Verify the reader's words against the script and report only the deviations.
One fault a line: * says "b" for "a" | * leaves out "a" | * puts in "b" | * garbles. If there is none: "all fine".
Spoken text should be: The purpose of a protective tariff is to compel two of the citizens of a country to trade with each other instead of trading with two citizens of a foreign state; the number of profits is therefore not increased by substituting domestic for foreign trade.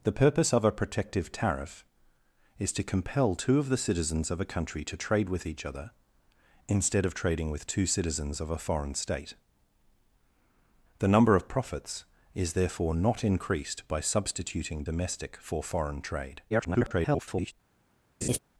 * garbles